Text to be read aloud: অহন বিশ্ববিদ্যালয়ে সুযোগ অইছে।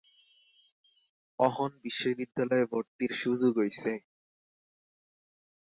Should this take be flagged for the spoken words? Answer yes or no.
yes